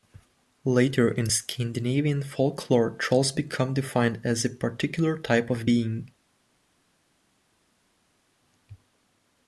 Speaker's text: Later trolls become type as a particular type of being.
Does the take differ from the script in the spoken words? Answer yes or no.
yes